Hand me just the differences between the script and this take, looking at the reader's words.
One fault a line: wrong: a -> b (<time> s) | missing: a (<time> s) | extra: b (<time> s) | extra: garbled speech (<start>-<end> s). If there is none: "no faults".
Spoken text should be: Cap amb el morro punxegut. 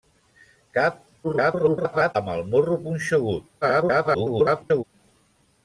extra: garbled speech (1.2-2.1 s)
extra: garbled speech (3.6-4.8 s)